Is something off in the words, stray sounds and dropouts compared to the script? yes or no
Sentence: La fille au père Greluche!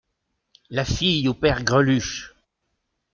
no